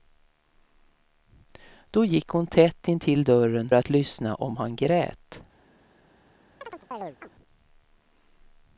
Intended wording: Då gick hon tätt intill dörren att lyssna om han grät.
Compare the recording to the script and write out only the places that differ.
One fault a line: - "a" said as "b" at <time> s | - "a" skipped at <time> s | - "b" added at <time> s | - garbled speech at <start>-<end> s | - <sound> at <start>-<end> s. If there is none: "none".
- chirp at 6.6-7.3 s